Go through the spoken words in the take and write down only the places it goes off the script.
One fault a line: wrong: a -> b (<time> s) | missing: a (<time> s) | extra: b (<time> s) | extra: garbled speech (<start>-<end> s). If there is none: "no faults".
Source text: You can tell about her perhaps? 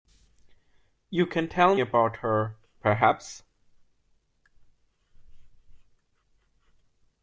no faults